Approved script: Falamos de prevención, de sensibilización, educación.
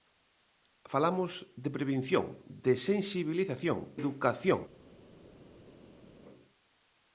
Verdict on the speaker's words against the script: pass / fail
pass